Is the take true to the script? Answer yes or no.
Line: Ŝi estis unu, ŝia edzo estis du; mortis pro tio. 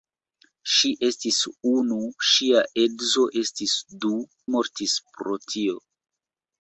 yes